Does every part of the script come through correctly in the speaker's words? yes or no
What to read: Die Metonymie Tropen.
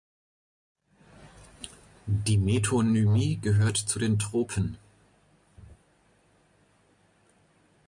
no